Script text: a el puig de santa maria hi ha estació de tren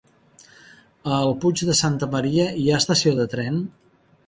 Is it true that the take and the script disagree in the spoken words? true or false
false